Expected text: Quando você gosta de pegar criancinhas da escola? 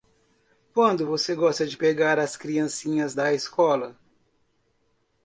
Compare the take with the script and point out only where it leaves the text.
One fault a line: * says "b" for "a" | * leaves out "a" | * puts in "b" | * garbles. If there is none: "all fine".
* puts in "as"